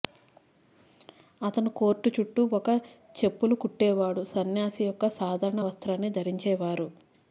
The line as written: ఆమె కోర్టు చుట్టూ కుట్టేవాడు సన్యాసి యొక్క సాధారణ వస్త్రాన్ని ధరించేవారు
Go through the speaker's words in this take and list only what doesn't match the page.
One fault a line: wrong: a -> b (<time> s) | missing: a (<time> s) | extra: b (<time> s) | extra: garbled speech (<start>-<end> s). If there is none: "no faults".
wrong: ఆమె -> అతను (1.4 s)
extra: ఒక చెప్పులు (2.5 s)